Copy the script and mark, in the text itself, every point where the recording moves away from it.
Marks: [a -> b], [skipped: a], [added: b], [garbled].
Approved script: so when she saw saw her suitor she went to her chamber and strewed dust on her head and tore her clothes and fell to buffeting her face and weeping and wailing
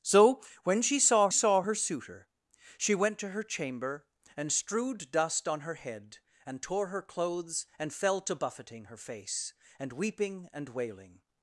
so when she saw saw her suitor she went to her chamber and strewed dust on her head and tore her clothes and fell to buffeting her face and weeping and wailing